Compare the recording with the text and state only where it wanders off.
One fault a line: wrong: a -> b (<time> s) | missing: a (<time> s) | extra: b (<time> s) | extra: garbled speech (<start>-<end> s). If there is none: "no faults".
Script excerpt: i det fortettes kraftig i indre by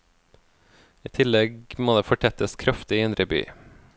extra: tillegg må (1.2 s)